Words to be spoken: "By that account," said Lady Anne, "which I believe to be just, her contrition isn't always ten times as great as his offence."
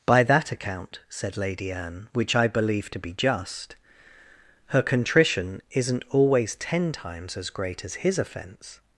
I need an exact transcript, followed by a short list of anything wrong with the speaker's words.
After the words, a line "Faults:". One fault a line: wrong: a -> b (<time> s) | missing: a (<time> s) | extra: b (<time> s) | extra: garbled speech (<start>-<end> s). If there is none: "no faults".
"By that account," said Lady Anne, "which I believe to be just, her contrition isn't always ten times as great as his offence."
Faults:
no faults